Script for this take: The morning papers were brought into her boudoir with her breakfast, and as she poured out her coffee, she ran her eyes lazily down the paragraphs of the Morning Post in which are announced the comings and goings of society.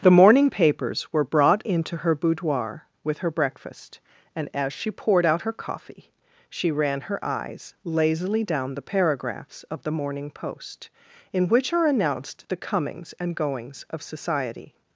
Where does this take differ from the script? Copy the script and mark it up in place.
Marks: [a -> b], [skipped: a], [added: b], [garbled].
The morning papers were brought into her boudoir with her breakfast, and as she poured out her coffee, she ran her eyes lazily down the paragraphs of the Morning Post in which are announced the comings and goings of society.